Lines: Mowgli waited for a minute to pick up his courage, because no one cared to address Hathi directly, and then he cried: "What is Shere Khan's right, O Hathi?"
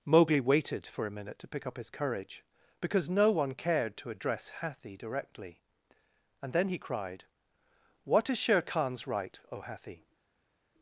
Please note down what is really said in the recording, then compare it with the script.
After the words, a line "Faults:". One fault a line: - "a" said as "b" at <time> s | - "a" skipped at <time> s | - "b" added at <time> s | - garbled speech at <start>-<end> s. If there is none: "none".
Mowgli waited for a minute to pick up his courage, because no one cared to address Hathi directly, and then he cried: "What is Shere Khan's right, O Hathi?"
Faults:
none